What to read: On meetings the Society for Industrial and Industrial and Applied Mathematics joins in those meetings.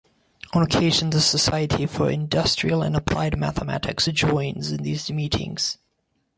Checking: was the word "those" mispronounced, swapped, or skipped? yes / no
yes